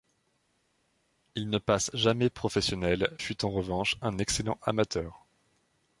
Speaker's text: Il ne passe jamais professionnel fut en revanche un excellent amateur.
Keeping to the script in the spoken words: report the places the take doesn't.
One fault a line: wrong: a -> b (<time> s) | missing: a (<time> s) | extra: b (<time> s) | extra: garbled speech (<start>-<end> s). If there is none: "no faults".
no faults